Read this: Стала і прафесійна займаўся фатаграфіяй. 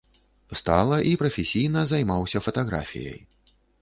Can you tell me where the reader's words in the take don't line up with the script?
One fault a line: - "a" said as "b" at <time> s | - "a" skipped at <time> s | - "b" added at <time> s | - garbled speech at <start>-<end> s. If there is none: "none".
none